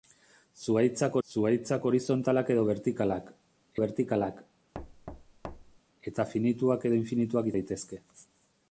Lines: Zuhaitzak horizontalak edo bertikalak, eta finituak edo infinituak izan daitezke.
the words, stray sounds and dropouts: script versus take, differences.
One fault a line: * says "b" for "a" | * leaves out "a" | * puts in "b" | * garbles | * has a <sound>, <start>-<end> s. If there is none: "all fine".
* puts in "zuhaitzak"
* puts in "bertikalak"
* has a thud, 4.7-5.8 s
* leaves out "izan"